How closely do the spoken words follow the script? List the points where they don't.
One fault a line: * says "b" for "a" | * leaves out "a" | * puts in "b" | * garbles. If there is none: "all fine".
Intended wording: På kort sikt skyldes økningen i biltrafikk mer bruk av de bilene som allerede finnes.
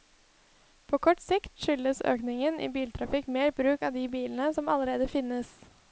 all fine